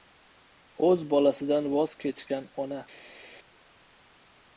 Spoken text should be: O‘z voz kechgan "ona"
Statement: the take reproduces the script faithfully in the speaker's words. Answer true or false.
false